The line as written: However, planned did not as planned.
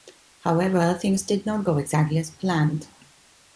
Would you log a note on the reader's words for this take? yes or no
yes